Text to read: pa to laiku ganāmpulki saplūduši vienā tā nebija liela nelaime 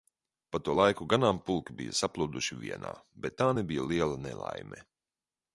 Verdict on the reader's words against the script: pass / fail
fail